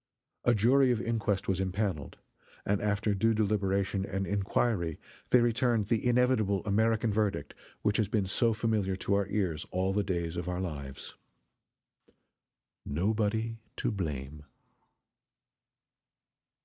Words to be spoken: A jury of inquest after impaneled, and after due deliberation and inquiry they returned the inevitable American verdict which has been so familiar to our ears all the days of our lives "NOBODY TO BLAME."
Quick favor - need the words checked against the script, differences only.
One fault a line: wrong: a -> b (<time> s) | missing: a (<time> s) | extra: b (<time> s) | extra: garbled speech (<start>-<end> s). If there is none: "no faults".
wrong: after -> was (1.5 s)